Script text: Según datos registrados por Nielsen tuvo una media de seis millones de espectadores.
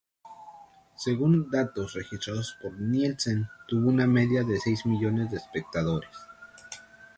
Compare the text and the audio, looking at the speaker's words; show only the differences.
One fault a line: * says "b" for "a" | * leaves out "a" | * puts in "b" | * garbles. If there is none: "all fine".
all fine